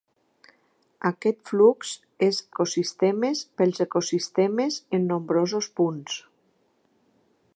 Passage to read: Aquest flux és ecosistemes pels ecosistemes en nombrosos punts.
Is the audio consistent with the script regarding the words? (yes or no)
yes